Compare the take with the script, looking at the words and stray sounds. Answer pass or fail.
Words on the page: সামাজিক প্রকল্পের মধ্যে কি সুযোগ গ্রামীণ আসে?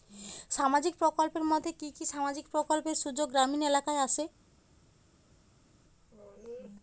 fail